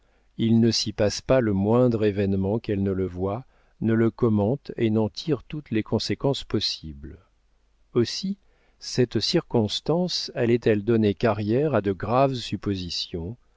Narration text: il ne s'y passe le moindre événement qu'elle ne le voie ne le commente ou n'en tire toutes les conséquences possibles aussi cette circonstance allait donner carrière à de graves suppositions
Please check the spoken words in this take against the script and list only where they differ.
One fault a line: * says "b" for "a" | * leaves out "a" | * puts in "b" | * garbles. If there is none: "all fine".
* puts in "pas"
* says "et" for "ou"
* puts in "elle"